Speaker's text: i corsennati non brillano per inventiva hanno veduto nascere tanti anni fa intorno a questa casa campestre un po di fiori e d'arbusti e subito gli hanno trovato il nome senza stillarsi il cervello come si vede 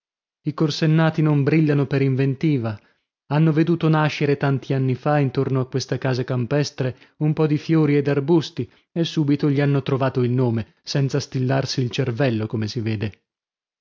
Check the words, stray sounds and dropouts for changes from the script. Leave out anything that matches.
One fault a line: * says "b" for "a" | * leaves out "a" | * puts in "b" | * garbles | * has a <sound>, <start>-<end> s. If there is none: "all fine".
all fine